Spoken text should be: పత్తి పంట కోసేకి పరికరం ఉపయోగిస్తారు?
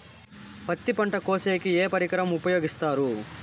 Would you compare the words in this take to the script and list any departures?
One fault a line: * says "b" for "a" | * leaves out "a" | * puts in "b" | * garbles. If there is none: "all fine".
* puts in "ఏ"